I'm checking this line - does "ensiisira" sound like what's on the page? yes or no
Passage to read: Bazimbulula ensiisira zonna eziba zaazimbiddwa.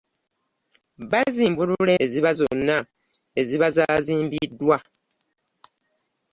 no